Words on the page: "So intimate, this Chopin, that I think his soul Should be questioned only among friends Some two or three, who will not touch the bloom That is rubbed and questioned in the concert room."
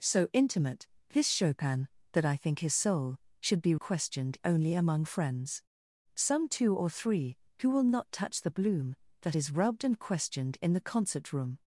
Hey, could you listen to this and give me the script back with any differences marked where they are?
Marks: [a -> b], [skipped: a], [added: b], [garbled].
"So intimate, this Chopin, that I think his soul Should be questioned only among friends Some two or three, who will not touch the bloom That is rubbed and questioned in the concert room."